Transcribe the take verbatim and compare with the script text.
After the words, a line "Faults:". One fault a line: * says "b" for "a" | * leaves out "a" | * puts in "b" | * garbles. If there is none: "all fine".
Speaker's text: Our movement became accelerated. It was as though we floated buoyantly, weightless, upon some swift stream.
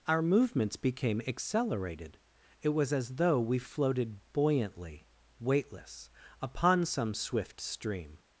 Our movements became accelerated. It was as though we floated buoyantly, weightless, upon some swift stream.
Faults:
* says "movements" for "movement"